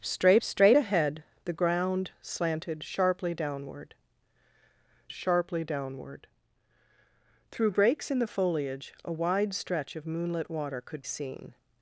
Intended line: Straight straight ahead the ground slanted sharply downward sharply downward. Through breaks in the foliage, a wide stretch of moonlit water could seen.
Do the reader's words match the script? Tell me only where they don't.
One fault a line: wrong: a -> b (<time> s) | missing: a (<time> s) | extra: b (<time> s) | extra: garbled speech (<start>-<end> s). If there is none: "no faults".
no faults